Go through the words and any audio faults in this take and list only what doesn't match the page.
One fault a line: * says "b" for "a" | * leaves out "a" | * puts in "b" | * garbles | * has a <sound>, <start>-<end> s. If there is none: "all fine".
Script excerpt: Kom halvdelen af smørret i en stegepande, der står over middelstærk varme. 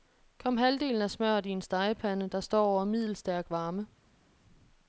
all fine